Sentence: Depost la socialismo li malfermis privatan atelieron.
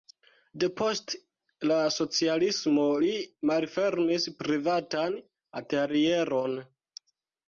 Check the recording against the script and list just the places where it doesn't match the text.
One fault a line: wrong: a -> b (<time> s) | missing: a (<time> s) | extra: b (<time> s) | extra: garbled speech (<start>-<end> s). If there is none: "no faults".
no faults